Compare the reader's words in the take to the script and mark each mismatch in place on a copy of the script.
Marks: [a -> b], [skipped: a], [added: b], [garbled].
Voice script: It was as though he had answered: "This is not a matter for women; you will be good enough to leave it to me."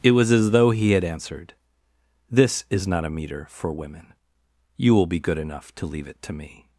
It was as though he had answered: "This is not a [matter -> meter] for women; you will be good enough to leave it to me."